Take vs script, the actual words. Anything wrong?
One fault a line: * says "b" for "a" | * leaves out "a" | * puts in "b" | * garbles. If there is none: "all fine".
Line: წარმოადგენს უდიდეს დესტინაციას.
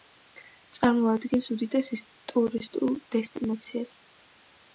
* puts in "ტურისტულ"